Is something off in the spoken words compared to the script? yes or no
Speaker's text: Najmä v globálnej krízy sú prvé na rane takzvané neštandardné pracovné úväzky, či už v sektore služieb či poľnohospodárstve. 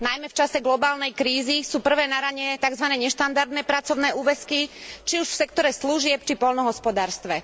yes